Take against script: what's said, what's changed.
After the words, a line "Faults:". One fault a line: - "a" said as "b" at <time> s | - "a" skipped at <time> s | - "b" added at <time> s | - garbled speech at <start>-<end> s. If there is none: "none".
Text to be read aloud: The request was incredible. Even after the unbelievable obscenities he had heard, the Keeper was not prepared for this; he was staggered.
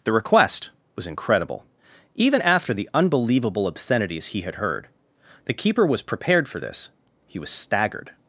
The request was incredible. Even after the unbelievable obscenities he had heard, the Keeper was prepared for this; he was staggered.
Faults:
- "not" skipped at 6.0 s